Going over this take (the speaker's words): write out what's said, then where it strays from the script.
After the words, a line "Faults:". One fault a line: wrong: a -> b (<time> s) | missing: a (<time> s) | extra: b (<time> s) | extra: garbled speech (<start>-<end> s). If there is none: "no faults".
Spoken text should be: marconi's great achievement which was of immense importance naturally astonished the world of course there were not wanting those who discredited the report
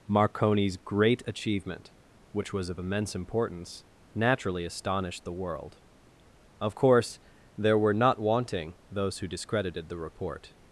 marconi's great achievement which was of immense importance naturally astonished the world of course there were not wanting those who discredited the report
Faults:
no faults